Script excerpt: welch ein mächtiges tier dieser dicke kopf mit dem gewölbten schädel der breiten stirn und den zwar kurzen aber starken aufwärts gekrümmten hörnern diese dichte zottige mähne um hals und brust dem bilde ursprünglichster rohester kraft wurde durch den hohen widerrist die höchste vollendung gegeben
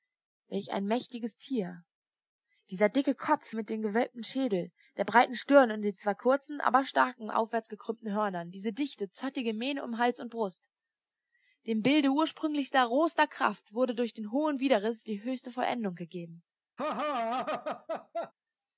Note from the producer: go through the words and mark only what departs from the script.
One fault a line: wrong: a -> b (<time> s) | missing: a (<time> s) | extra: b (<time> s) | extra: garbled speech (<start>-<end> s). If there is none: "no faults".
no faults